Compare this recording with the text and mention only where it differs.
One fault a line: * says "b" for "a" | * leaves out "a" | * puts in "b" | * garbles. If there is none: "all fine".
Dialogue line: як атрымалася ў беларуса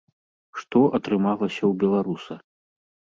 * says "што" for "як"